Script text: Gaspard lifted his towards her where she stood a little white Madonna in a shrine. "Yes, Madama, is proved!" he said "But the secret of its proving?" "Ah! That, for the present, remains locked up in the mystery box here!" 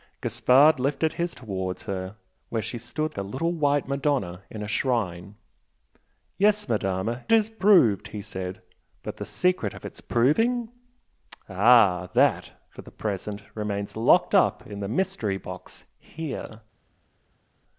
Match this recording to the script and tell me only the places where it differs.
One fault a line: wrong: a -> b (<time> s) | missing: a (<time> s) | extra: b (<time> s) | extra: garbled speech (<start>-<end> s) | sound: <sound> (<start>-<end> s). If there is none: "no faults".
no faults